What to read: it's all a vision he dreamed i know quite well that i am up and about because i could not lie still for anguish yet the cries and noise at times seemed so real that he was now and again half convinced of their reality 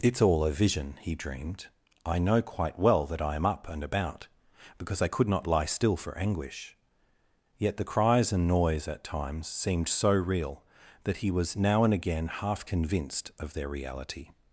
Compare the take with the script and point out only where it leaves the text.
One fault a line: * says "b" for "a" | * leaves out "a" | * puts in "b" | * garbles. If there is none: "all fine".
all fine